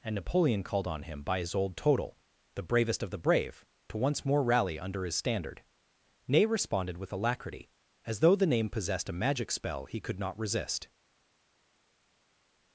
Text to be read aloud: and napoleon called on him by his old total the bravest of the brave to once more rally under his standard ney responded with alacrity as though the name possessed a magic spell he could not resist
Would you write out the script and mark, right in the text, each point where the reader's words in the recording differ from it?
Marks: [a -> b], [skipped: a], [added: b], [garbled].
and napoleon called on him by his old total the bravest of the brave to once more rally under his standard ney responded with alacrity as though the name possessed a magic spell he could not resist